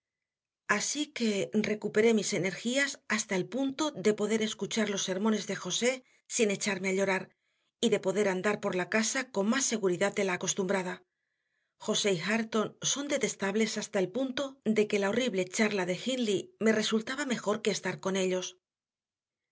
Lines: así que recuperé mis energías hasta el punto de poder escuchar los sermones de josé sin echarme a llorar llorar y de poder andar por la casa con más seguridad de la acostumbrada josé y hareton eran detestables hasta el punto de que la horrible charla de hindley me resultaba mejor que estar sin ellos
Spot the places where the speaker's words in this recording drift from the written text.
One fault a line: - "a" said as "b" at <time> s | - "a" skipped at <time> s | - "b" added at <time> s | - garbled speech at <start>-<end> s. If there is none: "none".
- "llorar" skipped at 7.2 s
- "eran" said as "son" at 12.9 s
- "sin" said as "con" at 18.0 s